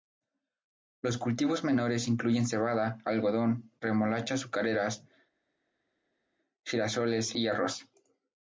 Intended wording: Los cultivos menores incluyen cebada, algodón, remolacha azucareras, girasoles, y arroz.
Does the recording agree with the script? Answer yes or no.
yes